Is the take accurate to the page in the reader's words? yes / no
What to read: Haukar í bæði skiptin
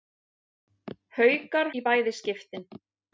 yes